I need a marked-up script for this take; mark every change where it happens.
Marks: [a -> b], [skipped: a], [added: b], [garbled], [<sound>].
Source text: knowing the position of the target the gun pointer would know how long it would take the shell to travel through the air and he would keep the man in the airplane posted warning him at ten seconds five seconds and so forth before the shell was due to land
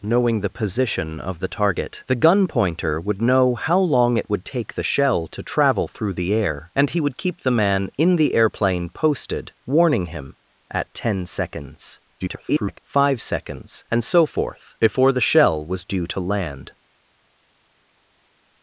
knowing the position of the target the gun pointer would know how long it would take the shell to travel through the air and he would keep the man in the airplane posted warning him at ten seconds [garbled] five seconds and so forth before the shell was due to land